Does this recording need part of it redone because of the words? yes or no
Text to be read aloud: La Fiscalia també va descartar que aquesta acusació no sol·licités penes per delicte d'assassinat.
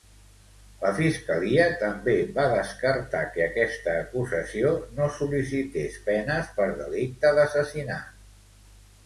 no